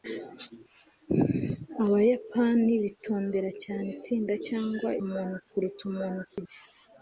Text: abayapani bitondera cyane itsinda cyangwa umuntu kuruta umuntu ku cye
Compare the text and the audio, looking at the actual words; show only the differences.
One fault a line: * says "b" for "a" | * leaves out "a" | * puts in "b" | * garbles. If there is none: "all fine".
all fine